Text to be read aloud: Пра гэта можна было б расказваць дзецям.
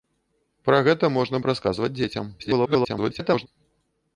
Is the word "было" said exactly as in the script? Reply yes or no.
no